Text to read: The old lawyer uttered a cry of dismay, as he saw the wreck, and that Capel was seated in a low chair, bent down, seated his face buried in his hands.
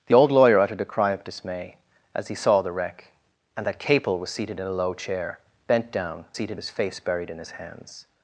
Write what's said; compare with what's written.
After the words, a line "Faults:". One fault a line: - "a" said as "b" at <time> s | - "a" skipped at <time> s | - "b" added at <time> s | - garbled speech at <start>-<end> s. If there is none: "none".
The old lawyer uttered a cry of dismay, as he saw the wreck, and that Capel was seated in a low chair, bent down, seated his face buried in his hands.
Faults:
none